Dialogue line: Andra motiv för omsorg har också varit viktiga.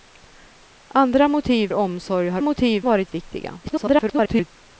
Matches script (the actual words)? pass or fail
fail